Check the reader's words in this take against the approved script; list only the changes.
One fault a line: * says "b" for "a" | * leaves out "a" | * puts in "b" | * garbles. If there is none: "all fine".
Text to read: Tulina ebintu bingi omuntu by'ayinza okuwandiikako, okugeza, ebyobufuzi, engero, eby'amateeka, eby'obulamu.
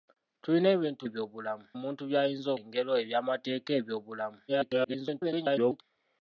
* says "eby'obulamu" for "bingi"
* leaves out "okuwandiikako okugeza ebyobufuzi"
* garbles